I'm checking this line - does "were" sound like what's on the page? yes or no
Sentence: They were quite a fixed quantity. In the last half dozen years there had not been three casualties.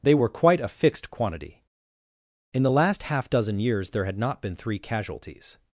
yes